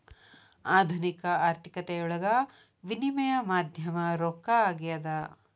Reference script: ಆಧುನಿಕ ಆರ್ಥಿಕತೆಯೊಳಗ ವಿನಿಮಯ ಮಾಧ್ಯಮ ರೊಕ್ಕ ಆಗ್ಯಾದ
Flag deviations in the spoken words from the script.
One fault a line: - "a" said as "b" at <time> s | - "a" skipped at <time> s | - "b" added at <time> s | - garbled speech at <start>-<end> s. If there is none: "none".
none